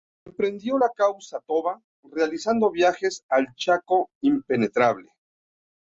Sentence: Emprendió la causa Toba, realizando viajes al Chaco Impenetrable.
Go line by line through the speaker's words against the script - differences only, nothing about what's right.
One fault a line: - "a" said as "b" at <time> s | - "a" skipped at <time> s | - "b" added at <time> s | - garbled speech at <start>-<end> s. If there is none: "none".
none